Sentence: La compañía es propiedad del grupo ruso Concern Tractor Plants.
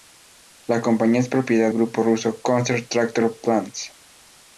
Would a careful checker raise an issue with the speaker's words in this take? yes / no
yes